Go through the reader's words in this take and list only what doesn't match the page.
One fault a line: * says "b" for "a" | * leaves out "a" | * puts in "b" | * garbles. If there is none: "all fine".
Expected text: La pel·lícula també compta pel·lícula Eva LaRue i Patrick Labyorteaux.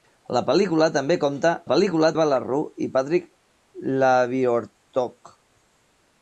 all fine